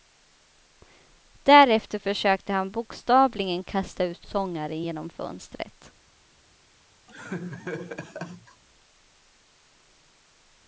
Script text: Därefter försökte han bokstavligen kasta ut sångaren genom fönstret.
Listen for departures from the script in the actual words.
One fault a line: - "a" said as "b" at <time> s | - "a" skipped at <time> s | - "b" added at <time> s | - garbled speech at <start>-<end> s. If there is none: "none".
none